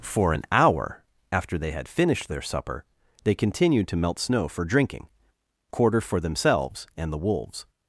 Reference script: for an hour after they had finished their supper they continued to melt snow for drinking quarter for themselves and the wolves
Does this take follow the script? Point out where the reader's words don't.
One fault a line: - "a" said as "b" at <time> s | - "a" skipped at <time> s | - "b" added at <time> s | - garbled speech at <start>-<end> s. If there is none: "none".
none